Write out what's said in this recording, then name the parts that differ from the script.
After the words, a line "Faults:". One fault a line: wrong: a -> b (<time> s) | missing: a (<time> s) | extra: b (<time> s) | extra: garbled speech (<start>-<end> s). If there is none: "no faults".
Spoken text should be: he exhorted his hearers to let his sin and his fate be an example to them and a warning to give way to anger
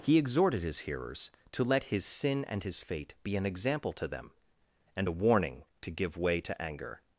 he exhorted his hearers to let his sin and his fate be an example to them and a warning to give way to anger
Faults:
no faults